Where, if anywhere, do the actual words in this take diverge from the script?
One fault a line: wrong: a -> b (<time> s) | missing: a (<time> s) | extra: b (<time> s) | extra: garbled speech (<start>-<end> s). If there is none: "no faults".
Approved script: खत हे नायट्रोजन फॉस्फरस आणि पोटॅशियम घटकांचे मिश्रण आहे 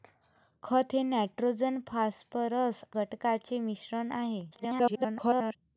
missing: आणि पोटॅशियम (2.8 s)
extra: garbled speech (4.5-5.6 s)